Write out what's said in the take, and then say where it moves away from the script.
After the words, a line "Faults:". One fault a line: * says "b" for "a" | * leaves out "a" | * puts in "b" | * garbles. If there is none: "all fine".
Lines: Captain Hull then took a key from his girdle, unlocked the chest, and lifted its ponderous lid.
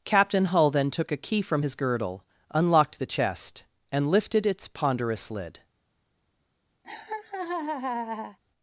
Captain Hull then took a key from his girdle, unlocked the chest, and lifted its ponderous lid.
Faults:
all fine